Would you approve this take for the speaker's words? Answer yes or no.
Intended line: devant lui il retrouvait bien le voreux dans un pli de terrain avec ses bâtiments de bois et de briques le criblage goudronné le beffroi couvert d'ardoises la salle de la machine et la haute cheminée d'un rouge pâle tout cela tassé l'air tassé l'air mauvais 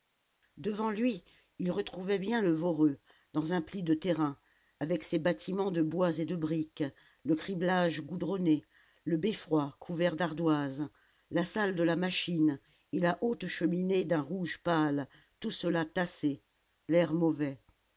no